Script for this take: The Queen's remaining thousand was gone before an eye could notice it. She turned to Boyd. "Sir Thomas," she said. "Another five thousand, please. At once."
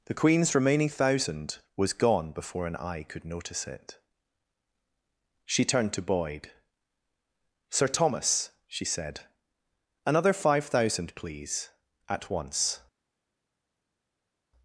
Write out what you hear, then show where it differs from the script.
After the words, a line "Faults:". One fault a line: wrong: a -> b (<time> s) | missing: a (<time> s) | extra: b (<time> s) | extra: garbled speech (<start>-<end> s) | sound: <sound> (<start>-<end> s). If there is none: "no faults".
The Queen's remaining thousand was gone before an eye could notice it. She turned to Boyd. "Sir Thomas," she said. "Another five thousand, please. At once."
Faults:
no faults